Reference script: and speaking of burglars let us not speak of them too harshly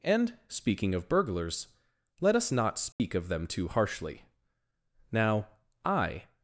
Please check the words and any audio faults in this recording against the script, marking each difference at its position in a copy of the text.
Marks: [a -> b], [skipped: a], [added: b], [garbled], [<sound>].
and speaking of burglars let us not speak [dropout] of them too harshly [added: now i]